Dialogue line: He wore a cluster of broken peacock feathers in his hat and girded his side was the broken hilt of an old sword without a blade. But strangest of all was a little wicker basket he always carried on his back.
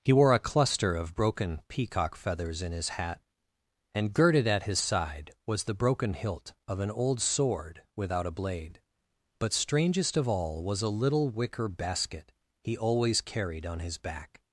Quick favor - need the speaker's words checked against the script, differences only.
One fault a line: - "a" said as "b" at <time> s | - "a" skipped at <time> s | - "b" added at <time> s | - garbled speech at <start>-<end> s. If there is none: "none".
- "at" added at 4.5 s